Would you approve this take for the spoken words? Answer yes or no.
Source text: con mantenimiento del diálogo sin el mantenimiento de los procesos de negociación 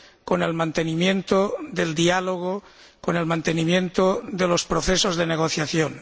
no